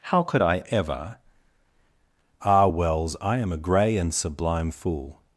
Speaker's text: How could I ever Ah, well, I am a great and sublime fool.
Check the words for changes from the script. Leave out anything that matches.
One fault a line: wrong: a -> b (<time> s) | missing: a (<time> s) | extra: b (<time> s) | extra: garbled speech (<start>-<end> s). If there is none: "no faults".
wrong: well -> wells (2.7 s)
wrong: great -> grey (3.6 s)